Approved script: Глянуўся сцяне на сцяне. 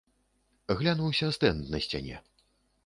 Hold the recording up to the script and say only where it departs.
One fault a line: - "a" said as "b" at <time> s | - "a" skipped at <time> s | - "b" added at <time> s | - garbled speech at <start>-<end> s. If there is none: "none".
- "сцяне" said as "стэнд" at 1.4 s